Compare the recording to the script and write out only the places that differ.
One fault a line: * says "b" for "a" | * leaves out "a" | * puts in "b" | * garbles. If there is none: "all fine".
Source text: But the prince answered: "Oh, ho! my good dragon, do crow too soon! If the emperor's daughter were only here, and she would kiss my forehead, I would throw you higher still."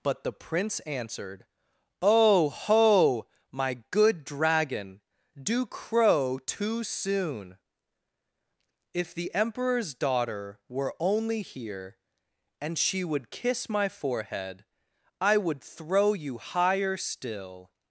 all fine